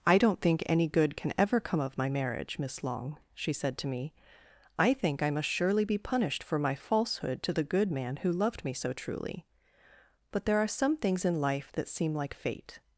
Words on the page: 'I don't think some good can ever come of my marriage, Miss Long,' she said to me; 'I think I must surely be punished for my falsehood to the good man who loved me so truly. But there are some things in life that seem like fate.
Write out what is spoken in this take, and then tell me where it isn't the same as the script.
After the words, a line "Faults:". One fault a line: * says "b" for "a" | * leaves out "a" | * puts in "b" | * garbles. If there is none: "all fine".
'I don't think any good can ever come of my marriage, Miss Long,' she said to me; 'I think I must surely be punished for my falsehood to the good man who loved me so truly. But there are some things in life that seem like fate.
Faults:
* says "any" for "some"